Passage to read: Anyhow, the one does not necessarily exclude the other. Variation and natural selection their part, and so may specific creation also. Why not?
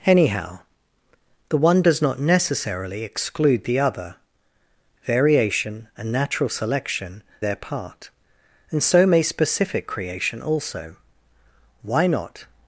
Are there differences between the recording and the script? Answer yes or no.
no